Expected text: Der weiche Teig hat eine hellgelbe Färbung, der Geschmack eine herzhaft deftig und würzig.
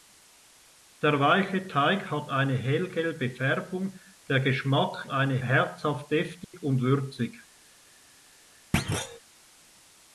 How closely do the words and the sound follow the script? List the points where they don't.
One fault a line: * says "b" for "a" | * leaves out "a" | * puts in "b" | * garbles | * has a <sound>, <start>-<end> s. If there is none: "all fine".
* has a dropout, 6.4-6.5 s
* has a thud, 8.7-9.2 s